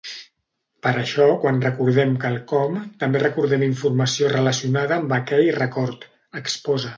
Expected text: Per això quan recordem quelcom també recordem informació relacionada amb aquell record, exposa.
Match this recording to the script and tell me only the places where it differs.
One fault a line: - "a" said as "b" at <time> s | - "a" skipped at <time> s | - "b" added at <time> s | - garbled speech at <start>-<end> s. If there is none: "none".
none